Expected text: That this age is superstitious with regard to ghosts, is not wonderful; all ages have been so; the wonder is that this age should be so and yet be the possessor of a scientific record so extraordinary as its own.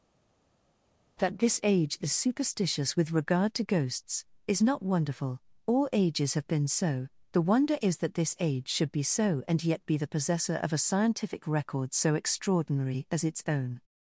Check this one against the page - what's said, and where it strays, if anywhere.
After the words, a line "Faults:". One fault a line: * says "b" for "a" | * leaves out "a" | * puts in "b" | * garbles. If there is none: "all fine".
That this age is superstitious with regard to ghosts, is not wonderful; all ages have been so; the wonder is that this age should be so and yet be the possessor of a scientific record so extraordinary as its own.
Faults:
all fine